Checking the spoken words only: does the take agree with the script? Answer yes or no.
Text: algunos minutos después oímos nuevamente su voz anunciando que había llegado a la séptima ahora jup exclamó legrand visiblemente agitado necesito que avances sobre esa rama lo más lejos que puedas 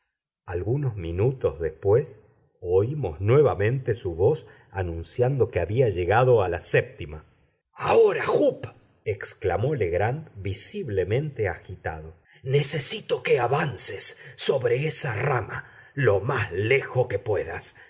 yes